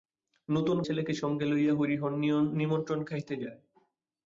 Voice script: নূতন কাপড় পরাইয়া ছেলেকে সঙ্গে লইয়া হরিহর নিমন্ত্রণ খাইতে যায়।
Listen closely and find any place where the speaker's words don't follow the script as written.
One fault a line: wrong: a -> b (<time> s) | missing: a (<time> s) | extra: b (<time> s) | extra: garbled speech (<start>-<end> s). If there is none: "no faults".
missing: কাপড় পরাইয়া (0.8 s)